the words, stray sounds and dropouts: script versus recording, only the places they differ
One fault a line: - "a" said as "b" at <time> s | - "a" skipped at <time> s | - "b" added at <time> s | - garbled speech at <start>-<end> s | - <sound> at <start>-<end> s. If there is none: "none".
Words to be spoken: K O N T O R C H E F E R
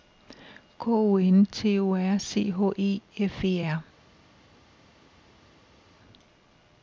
none